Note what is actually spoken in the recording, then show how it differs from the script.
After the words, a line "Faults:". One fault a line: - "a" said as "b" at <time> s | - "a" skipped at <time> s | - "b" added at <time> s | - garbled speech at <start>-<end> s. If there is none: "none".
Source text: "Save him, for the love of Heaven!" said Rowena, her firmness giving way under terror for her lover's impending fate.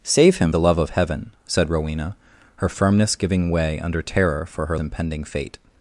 "Save him, the love of Heaven!" said Rowena, her firmness giving way under terror for her impending fate.
Faults:
- "for" skipped at 0.5 s
- "lover's" skipped at 4.8 s